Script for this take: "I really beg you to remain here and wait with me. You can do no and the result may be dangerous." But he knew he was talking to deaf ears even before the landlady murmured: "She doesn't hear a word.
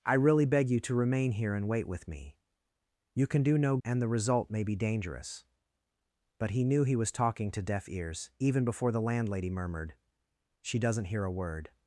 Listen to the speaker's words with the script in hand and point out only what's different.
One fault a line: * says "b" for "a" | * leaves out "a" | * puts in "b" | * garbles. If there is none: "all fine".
all fine